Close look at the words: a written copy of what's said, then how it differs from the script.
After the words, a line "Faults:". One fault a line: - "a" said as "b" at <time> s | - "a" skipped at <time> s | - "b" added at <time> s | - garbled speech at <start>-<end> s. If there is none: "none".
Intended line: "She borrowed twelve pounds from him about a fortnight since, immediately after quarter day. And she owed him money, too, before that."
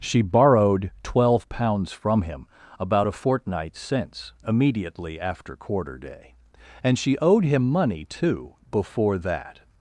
"She borrowed twelve pounds from him about a fortnight since, immediately after quarter day. And she owed him money, too, before that."
Faults:
none